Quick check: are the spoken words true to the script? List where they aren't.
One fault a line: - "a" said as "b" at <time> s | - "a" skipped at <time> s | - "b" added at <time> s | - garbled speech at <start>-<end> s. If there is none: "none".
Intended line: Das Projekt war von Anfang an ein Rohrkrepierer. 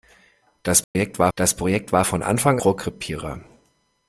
- "das Projekt war" added at 1.4 s
- "an ein" skipped at 2.6 s